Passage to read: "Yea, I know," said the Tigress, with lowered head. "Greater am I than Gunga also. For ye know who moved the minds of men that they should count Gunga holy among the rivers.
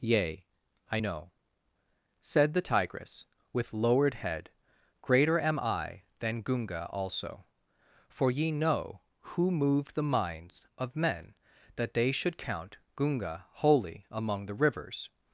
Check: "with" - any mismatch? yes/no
no